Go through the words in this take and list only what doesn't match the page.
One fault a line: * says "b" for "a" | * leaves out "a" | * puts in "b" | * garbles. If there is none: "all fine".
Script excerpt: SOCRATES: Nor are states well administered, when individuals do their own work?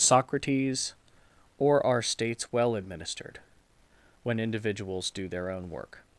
* says "Or" for "Nor"